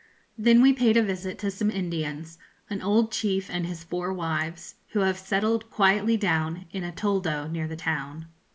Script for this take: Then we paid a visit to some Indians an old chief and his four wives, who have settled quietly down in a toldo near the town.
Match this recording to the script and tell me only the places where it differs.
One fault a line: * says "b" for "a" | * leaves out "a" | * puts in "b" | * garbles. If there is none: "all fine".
all fine